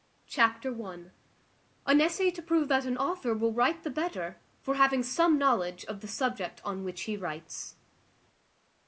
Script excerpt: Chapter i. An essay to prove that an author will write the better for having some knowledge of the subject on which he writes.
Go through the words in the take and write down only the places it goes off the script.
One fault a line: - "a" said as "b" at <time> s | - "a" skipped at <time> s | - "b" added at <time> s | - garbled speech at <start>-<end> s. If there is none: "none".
none